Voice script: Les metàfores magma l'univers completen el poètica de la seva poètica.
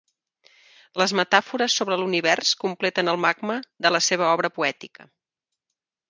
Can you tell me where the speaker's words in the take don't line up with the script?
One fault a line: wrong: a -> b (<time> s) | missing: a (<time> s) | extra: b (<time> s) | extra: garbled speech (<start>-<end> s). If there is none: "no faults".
wrong: magma -> sobre (1.8 s)
wrong: poètica -> magma (3.2 s)
extra: obra (4.4 s)